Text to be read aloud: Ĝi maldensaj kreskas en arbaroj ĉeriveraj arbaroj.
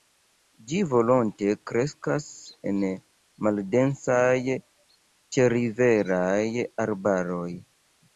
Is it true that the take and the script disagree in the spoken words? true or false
true